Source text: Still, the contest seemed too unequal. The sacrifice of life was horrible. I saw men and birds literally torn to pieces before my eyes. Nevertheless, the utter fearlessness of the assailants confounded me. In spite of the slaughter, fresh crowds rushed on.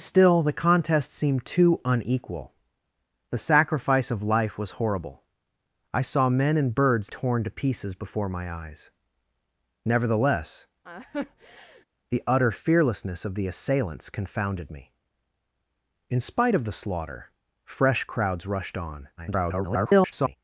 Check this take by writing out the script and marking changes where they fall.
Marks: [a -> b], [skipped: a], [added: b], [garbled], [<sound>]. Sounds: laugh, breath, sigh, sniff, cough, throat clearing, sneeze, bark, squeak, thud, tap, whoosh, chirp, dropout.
Still, the contest seemed too unequal. The sacrifice of life was horrible. I saw men and birds [skipped: literally] torn to pieces before my eyes. Nevertheless, [laugh] the utter fearlessness of the assailants confounded me. In spite of the slaughter, fresh crowds rushed on. [garbled]